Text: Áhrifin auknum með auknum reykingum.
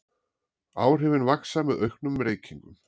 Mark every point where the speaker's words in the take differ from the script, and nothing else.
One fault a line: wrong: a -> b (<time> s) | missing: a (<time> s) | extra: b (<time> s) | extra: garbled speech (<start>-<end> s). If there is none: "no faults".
wrong: auknum -> vaxa (1.3 s)